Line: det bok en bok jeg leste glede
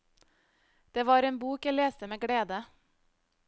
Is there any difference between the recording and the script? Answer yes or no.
yes